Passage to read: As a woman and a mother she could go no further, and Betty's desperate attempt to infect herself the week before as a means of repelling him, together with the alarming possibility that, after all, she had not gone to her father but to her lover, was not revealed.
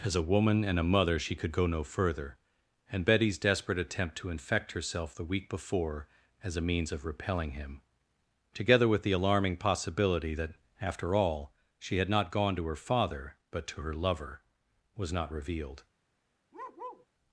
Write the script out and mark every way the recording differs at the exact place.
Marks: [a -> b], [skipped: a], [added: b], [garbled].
As a woman and a mother she could go no further, and Betty's desperate attempt to infect herself the week before as a means of repelling him, together with the alarming possibility that, after all, she had not gone to her father but to her lover, was not revealed.